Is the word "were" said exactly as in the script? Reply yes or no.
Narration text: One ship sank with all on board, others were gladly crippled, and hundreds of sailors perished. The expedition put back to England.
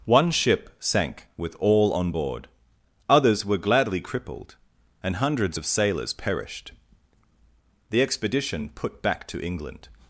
yes